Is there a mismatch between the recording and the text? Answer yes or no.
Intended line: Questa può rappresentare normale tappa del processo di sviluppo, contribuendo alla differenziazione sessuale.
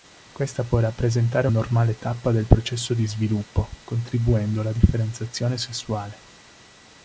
no